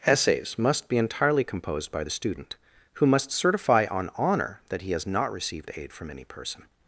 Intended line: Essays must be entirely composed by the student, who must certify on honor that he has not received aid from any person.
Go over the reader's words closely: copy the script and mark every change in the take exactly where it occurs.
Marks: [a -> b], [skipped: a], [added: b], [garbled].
Essays must be entirely composed by the student, who must certify on honor that he has not received aid from any person.